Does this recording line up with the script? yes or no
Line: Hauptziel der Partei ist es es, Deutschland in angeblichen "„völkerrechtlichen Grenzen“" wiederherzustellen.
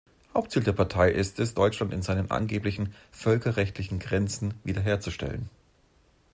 no